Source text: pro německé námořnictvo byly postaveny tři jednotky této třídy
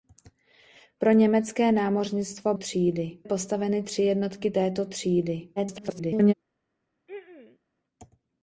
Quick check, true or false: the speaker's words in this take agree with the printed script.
false